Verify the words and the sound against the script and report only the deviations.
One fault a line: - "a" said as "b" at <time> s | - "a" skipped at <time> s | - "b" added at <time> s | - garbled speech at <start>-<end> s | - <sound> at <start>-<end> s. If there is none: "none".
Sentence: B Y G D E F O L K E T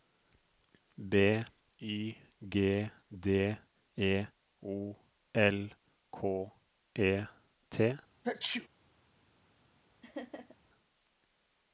- "F" skipped at 4.2 s
- sneeze at 8.2-8.7 s
- laugh at 10.0-10.6 s